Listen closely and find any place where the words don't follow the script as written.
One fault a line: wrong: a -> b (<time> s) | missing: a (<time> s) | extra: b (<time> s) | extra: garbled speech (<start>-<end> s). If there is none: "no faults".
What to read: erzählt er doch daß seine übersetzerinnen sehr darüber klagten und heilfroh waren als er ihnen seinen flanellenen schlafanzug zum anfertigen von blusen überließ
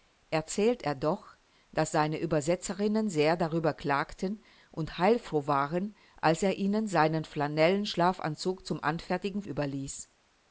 missing: von blusen (9.4 s)